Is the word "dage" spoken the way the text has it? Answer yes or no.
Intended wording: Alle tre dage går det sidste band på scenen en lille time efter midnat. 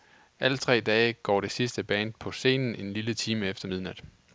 yes